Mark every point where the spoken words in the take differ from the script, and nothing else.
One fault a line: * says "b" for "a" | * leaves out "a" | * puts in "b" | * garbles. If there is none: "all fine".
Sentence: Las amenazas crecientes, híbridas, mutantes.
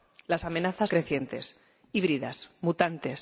all fine